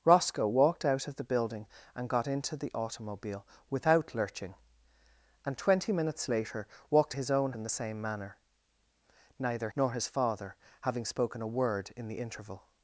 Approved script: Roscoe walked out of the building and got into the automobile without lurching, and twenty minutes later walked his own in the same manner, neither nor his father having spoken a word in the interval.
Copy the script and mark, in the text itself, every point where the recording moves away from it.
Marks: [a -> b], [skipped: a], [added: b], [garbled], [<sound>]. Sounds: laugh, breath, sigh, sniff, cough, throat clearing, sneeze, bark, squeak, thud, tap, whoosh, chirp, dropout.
Roscoe walked out of the building and got into the automobile without lurching, and twenty minutes later walked his own in the same manner, neither nor his father having spoken a word in the interval.